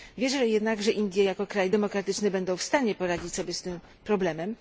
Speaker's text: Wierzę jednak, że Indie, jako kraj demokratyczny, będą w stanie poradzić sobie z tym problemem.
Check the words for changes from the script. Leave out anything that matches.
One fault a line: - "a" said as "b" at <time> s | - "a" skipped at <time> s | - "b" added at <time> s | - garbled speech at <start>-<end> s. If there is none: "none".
none